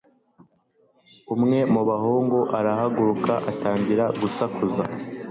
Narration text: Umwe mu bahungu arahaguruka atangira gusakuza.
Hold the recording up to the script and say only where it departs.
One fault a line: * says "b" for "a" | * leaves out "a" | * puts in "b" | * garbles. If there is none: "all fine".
all fine